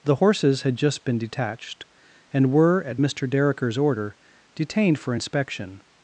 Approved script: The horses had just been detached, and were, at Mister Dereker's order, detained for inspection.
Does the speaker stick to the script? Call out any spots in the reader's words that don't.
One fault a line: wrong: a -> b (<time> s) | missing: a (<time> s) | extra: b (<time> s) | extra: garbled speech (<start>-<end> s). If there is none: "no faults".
no faults